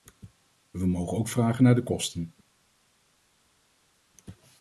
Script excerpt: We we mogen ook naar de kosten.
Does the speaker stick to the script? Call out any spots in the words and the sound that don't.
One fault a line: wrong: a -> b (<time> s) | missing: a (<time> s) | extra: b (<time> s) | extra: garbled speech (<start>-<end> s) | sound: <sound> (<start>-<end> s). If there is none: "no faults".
missing: we (0.8 s)
extra: vragen (1.3 s)